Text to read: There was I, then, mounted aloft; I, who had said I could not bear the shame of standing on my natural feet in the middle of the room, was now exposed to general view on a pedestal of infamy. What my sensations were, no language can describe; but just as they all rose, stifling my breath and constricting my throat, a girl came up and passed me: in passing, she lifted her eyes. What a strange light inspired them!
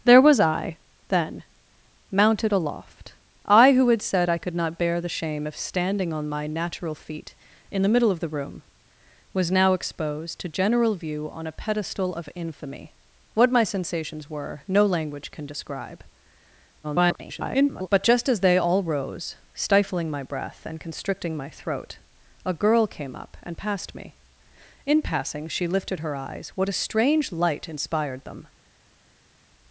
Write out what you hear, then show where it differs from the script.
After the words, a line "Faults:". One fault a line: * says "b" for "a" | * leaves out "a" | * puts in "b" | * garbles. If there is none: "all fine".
There was I, then, mounted aloft; I, who had said I could not bear the shame of standing on my natural feet in the middle of the room, was now exposed to general view on a pedestal of infamy. What my sensations were, no language can describe; [garbled] but just as they all rose, stifling my breath and constricting my throat, a girl came up and passed me: in passing, she lifted her eyes. What a strange light inspired them!
Faults:
* garbles